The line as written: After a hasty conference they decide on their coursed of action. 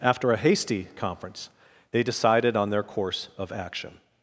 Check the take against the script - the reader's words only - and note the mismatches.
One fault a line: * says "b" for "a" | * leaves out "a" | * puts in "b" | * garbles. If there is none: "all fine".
* says "decided" for "decide"
* says "course" for "coursed"